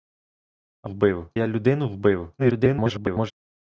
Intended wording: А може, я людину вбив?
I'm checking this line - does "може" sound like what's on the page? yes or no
no